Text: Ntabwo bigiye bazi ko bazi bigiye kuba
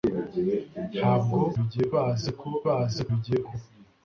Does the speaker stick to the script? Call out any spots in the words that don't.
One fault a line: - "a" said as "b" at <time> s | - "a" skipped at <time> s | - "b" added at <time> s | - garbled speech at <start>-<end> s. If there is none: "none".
none